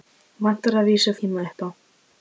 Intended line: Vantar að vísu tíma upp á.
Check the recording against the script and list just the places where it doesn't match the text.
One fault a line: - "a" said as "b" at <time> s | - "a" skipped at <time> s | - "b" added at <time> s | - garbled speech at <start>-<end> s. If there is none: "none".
none